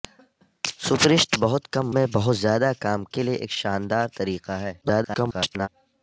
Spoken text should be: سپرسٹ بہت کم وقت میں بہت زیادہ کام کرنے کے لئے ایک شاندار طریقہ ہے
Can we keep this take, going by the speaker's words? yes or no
no